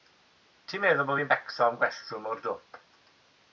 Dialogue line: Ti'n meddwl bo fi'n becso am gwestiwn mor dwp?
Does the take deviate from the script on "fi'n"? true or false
false